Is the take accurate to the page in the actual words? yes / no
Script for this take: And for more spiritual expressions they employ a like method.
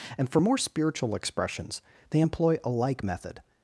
yes